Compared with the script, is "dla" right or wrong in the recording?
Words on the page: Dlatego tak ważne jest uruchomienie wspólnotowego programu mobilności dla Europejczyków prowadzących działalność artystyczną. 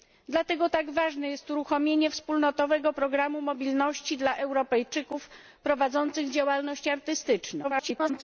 right